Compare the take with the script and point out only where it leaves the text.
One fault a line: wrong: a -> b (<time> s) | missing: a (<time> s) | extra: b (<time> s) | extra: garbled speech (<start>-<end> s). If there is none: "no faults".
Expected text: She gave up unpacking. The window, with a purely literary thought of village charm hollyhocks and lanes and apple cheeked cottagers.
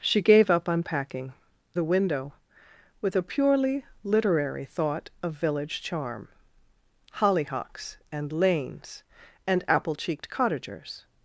no faults